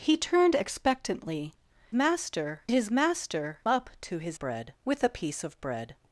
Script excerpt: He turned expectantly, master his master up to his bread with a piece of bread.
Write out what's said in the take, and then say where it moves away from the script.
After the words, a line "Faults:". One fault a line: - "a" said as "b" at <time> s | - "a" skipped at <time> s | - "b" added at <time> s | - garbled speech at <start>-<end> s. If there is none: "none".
He turned expectantly, master his master up to his bread with a piece of bread.
Faults:
none